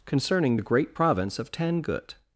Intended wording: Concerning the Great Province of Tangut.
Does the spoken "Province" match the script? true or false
true